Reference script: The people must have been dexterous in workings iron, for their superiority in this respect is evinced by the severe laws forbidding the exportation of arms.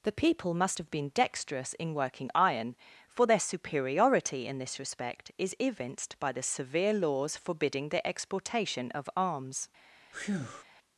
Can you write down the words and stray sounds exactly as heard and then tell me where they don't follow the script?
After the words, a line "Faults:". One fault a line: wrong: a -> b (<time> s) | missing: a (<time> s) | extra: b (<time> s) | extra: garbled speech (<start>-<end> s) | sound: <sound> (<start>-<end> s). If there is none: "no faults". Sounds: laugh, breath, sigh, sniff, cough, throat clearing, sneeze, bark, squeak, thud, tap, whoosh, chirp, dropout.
The people must have been dexterous in working iron, for their superiority in this respect is evinced by the severe laws forbidding the exportation of arms.
Faults:
wrong: workings -> working (1.9 s)
sound: breath (10.1-10.6 s)